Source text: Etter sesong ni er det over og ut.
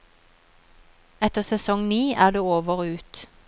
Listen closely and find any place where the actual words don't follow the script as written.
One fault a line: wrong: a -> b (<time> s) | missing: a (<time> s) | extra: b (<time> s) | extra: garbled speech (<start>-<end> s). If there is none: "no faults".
no faults